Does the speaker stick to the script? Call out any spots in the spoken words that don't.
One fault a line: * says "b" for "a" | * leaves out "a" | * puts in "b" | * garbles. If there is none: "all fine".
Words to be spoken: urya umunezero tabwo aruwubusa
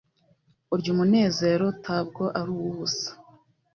all fine